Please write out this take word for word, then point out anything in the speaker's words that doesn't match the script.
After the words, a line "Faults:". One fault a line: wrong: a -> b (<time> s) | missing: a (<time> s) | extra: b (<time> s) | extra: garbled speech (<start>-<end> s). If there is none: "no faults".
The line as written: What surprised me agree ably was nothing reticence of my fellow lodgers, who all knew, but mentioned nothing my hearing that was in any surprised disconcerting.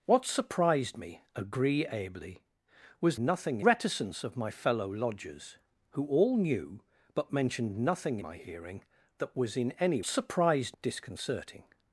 What surprised me agree ably was nothing reticence of my fellow lodgers, who all knew, but mentioned nothing my hearing that was in any surprised disconcerting.
Faults:
no faults